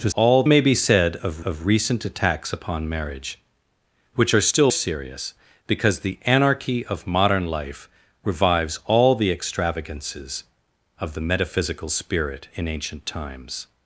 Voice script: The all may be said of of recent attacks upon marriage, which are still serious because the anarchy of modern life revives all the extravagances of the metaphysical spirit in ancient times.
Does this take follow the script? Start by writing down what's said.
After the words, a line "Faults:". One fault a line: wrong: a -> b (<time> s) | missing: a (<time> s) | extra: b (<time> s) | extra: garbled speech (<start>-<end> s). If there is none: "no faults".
The all may be said of of recent attacks upon marriage, which are still serious because the anarchy of modern life revives all the extravagances of the metaphysical spirit in ancient times.
Faults:
no faults